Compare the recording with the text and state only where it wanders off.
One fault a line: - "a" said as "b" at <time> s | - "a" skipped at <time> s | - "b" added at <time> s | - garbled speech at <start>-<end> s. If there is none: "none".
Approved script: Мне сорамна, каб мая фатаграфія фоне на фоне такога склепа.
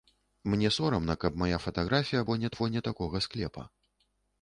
none